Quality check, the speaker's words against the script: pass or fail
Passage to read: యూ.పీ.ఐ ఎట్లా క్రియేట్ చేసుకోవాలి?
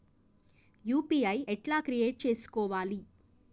pass